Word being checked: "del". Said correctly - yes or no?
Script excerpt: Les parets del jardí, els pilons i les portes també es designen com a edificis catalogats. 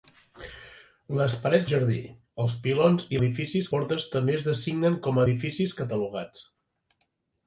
no